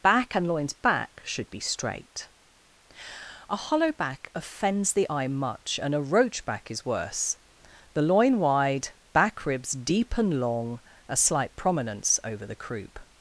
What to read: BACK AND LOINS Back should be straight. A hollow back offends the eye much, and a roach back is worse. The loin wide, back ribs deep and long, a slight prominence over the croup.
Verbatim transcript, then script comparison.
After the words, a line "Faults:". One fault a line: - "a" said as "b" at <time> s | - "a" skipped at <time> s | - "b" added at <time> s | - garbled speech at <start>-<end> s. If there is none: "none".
BACK AND LOINS Back should be straight. A hollow back offends the eye much, and a roach back is worse. The loin wide, back ribs deep and long, a slight prominence over the croup.
Faults:
none